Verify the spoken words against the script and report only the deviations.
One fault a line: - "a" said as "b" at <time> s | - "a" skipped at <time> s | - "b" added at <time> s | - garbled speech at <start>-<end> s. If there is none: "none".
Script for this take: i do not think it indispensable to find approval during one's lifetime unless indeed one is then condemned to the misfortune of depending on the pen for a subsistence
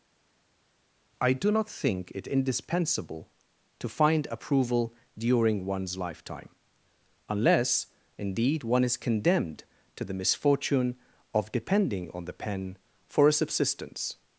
- "then" skipped at 9.0 s